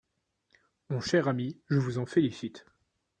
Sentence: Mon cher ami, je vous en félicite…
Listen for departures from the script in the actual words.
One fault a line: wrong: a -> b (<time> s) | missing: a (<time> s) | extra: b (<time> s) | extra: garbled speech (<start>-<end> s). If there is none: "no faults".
no faults